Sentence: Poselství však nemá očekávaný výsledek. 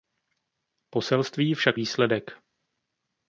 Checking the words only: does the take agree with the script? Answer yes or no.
no